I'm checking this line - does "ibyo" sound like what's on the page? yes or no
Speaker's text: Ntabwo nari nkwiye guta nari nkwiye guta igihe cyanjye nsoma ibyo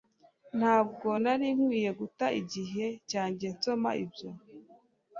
yes